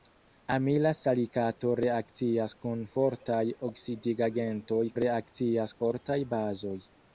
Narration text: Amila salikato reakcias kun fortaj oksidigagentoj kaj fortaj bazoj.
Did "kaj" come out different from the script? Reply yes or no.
yes